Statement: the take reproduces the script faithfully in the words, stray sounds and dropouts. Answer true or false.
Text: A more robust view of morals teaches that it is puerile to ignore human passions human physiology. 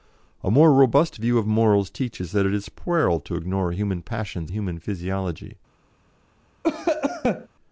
false